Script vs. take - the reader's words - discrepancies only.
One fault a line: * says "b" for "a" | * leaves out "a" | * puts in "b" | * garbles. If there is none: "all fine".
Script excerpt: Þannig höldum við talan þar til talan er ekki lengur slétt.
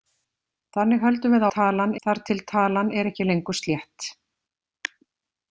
all fine